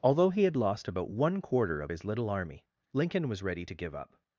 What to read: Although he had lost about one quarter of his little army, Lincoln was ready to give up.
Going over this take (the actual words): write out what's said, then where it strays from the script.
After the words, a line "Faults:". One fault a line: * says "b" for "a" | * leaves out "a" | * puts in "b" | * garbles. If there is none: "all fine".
Although he had lost about one quarter of his little army, Lincoln was ready to give up.
Faults:
all fine